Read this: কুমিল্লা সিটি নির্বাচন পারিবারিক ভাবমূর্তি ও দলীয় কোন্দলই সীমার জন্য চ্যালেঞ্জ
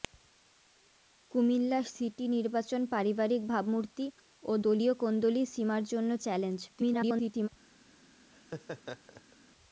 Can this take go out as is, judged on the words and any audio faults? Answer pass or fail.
fail